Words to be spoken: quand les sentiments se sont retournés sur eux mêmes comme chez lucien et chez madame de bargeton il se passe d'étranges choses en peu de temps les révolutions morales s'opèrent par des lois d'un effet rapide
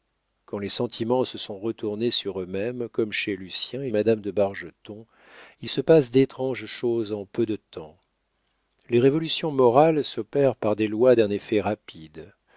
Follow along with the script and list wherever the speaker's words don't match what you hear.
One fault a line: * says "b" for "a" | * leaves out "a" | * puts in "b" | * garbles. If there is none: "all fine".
* leaves out "chez"